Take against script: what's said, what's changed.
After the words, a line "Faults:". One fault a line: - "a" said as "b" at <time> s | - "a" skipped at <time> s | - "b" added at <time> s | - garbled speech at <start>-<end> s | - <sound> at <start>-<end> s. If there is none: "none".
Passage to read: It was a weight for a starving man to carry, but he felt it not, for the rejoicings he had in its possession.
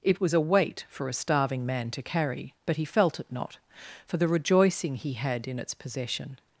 It was a weight for a starving man to carry, but he felt it not, for the rejoicing he had in its possession.
Faults:
- "rejoicings" said as "rejoicing" at 4.3 s